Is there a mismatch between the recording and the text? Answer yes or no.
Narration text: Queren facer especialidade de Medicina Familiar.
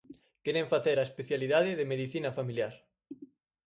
yes